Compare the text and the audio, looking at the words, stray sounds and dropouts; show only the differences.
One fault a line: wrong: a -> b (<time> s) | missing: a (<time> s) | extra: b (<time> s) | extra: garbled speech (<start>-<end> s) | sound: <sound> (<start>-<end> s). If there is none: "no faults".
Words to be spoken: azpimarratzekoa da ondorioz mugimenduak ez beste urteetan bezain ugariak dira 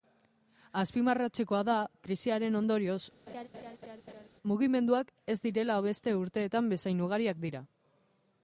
extra: krisiaren (2.1 s)
sound: laugh (3.3-4.3 s)
extra: direla (5.5 s)